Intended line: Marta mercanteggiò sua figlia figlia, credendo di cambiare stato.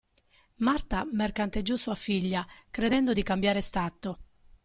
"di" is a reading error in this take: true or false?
false